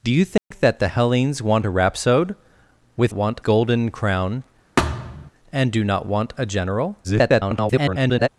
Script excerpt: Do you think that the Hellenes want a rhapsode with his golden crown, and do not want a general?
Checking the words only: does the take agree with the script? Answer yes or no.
no